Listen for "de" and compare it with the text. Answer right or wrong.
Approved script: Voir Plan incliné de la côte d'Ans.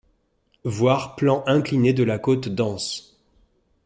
right